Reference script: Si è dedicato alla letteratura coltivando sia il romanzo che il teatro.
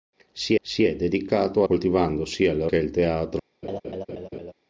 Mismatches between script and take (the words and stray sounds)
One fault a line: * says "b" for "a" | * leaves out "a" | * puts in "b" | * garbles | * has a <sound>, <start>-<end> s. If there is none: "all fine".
* puts in "si"
* leaves out "alla letteratura"
* leaves out "romanzo"
* has a laugh, 3.6-4.5 s